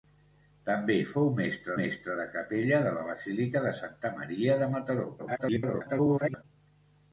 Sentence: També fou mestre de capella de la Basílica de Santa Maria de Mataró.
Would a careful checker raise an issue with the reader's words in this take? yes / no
yes